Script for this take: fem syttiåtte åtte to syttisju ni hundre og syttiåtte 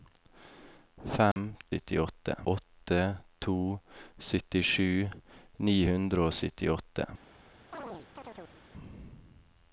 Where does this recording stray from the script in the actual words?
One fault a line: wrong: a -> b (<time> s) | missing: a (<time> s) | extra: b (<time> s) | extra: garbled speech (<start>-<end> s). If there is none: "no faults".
no faults